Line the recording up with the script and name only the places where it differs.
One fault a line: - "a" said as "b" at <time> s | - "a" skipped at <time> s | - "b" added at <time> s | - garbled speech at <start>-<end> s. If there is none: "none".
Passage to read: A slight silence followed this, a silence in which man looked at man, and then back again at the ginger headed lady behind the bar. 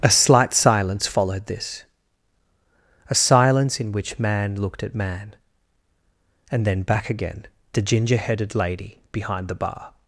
- "at" skipped at 7.5 s